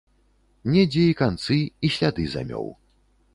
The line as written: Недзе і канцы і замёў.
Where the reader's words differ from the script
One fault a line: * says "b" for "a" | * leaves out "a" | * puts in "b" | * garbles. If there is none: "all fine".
* puts in "сляды"